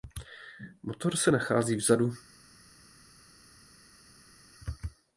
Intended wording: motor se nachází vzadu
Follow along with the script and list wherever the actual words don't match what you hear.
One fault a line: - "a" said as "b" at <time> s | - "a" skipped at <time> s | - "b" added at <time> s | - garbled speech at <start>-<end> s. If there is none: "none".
none